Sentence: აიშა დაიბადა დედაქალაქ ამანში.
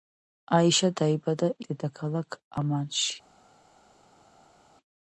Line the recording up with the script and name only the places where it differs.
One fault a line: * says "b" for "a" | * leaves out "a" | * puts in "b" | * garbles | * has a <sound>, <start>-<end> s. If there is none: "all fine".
all fine